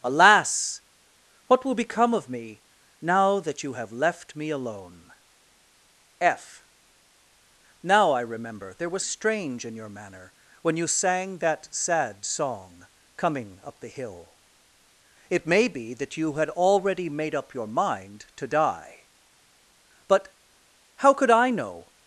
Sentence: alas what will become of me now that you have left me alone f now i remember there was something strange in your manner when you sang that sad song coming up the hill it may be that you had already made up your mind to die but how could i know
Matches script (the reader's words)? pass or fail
fail